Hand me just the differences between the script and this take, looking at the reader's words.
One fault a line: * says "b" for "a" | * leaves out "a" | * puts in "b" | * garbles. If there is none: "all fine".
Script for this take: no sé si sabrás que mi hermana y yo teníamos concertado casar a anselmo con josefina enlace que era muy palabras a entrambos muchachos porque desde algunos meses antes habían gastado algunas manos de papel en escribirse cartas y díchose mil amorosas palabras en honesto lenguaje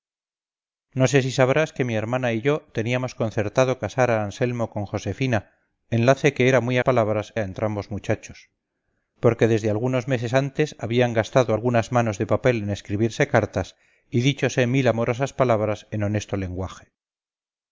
all fine